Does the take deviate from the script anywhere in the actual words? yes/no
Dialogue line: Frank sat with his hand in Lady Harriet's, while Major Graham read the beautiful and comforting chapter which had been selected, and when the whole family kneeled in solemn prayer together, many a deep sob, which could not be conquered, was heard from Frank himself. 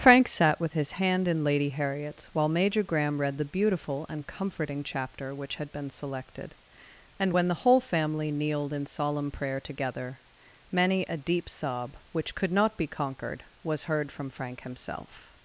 no